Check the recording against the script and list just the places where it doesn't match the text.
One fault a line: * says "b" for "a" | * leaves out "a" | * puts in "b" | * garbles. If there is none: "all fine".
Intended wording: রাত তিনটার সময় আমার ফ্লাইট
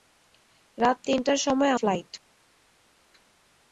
* leaves out "আমার"